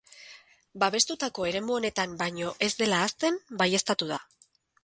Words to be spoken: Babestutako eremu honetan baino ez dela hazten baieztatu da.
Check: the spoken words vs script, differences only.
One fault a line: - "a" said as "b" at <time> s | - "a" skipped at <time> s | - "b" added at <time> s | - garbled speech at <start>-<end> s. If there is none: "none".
none